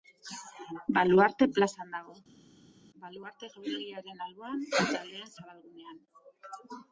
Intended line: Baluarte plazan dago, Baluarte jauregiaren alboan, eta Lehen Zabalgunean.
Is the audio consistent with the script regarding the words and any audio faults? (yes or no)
yes